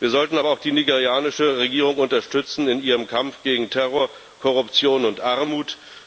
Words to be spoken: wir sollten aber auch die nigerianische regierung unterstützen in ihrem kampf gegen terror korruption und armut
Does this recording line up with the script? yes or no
yes